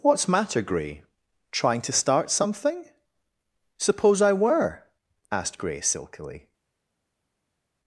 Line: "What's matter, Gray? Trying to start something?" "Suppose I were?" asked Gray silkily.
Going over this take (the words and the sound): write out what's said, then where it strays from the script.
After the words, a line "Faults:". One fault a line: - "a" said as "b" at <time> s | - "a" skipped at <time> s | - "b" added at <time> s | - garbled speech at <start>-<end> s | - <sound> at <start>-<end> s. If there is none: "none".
"What's matter, Gray? Trying to start something?" "Suppose I were?" asked Gray silkily.
Faults:
none